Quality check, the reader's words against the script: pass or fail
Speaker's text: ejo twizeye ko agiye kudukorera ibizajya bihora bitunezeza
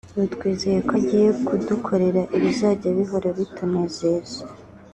fail